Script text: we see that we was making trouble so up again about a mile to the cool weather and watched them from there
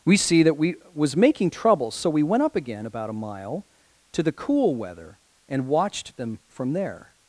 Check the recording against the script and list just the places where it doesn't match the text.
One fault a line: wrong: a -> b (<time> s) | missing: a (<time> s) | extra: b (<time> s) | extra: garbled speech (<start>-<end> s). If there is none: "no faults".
extra: we went (2.1 s)